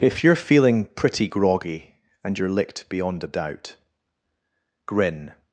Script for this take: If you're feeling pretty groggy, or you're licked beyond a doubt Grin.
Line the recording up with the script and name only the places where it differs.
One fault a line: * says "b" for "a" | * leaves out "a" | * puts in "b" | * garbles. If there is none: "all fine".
* says "and" for "or"